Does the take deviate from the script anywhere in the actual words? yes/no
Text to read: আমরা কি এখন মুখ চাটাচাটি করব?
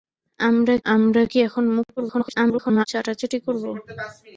yes